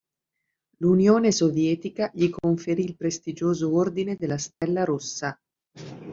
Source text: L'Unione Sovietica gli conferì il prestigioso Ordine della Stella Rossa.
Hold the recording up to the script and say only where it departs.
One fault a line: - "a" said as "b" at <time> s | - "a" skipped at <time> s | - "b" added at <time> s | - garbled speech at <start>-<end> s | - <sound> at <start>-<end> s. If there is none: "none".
- dropout at 4.5-4.6 s